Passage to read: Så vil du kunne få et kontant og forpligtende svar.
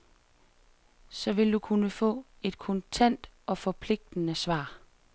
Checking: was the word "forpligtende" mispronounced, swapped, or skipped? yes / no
no